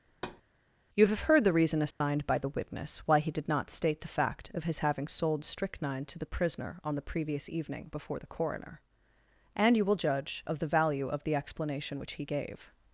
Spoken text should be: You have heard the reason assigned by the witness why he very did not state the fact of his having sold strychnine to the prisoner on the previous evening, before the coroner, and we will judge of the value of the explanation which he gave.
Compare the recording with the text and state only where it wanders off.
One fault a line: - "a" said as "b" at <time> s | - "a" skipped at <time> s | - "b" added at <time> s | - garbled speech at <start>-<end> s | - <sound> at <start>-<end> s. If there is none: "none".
- thud at 0.1-0.4 s
- dropout at 1.9-2.0 s
- "very" skipped at 3.3 s
- "we" said as "you" at 9.7 s